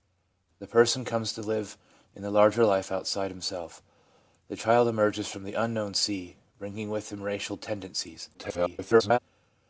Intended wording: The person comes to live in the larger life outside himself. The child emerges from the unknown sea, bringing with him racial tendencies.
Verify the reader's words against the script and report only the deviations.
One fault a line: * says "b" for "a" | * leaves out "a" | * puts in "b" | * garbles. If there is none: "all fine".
* garbles